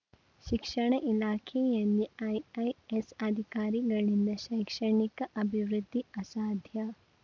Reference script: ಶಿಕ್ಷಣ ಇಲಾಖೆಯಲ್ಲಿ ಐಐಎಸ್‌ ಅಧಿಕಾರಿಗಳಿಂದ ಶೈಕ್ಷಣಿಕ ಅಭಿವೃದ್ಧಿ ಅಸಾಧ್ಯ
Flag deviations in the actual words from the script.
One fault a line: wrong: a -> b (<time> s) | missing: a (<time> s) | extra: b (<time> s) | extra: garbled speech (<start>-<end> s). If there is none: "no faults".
no faults